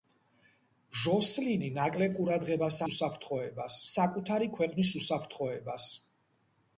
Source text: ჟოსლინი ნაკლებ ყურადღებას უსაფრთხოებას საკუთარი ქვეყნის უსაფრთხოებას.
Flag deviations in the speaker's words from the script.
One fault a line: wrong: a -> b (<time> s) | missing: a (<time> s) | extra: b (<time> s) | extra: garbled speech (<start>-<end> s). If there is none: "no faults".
no faults